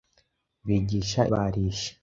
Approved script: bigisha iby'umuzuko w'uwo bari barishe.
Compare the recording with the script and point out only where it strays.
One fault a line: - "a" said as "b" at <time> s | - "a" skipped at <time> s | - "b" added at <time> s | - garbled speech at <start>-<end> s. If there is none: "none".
- "iby'umuzuko w'uwo bari" skipped at 1.2 s